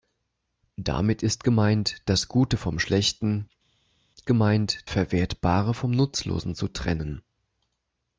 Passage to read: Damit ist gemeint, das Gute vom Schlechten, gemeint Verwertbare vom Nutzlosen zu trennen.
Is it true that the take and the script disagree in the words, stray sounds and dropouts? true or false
false